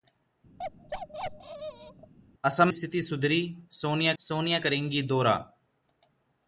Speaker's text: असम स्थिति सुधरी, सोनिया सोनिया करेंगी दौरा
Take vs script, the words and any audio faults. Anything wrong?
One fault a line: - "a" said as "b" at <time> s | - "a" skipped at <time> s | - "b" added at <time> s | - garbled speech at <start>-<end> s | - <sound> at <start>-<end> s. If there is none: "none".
- bark at 0.6-2.1 s